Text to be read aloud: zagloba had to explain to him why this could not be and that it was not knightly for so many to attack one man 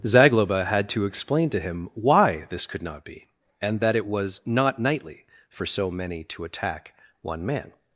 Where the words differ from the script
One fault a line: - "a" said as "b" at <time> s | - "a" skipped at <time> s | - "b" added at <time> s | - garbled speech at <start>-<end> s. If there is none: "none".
none